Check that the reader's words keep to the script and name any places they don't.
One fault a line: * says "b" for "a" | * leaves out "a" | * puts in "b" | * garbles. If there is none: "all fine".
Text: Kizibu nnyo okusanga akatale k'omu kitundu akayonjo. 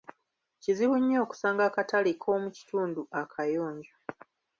all fine